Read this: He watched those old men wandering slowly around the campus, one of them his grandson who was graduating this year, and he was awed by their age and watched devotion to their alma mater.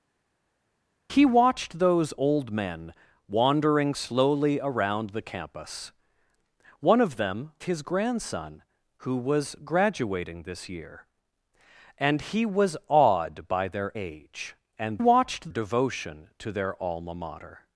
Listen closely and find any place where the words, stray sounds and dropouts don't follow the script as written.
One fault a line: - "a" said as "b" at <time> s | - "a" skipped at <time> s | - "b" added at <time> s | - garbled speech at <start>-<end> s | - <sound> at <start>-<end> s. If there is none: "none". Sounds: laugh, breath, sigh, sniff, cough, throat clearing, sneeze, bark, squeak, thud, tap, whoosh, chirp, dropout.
none